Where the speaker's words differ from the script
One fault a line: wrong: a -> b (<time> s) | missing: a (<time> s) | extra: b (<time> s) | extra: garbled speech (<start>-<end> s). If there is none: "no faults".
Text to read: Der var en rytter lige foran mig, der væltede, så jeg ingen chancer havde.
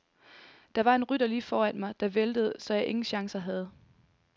no faults